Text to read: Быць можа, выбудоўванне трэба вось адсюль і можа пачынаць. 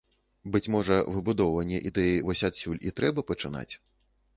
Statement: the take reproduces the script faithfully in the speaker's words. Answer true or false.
false